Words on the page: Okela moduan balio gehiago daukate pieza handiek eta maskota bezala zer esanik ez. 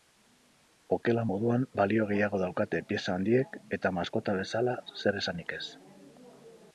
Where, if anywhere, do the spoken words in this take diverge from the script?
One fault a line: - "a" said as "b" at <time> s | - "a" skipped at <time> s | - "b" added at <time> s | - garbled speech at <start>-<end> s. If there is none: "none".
none